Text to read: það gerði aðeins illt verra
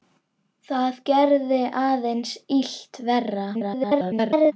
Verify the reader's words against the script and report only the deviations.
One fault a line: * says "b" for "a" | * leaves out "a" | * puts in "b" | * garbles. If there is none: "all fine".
* garbles